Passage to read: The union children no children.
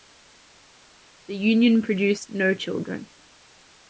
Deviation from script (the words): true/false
true